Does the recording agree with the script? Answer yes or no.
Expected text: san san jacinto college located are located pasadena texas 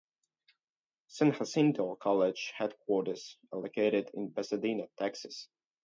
no